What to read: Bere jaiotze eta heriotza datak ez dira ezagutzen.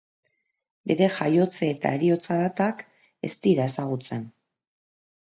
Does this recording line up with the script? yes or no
yes